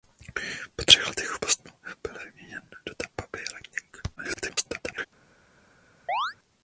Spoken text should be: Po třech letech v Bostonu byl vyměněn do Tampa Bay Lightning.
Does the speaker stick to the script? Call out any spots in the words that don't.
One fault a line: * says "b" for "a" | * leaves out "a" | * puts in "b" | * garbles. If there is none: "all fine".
* garbles